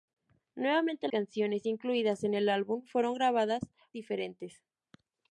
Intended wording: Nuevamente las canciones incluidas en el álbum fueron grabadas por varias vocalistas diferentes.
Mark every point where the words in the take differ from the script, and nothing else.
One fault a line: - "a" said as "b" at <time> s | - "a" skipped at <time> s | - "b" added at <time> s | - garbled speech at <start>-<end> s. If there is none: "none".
- "las" skipped at 1.1 s
- "por varias vocalistas" skipped at 3.7 s